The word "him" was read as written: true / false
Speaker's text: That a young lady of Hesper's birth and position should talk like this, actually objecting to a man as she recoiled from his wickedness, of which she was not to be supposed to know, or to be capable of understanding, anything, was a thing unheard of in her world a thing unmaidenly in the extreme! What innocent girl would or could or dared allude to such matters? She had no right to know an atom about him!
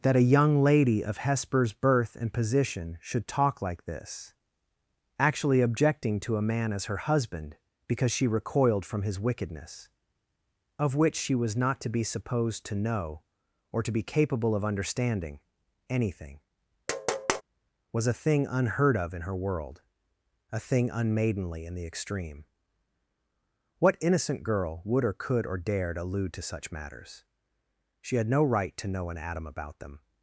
false